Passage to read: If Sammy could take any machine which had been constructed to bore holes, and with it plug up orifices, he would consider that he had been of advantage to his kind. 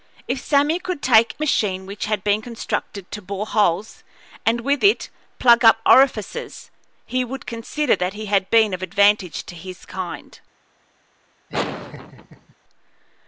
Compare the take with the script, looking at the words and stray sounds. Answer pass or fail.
fail